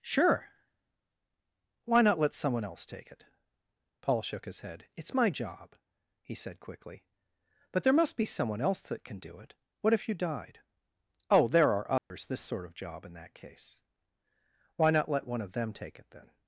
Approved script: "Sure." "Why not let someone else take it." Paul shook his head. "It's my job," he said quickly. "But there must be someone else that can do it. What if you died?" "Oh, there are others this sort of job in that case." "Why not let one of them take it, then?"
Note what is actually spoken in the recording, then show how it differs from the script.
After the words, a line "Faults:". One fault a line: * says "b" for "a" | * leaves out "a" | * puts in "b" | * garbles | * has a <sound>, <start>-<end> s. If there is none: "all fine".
"Sure." "Why not let someone else take it." Paul shook his head. "It's my job," he said quickly. "But there must be someone else that can do it. What if you died?" "Oh, there are others this sort of job in that case." "Why not let one of them take it, then?"
Faults:
* has a dropout, 12.0-12.1 s